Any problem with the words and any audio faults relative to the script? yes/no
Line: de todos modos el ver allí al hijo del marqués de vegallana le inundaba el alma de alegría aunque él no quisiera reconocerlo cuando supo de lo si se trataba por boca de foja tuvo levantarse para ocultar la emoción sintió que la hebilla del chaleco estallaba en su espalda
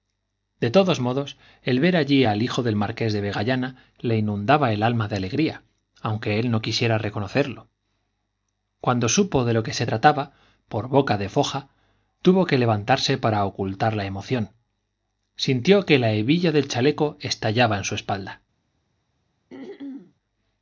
yes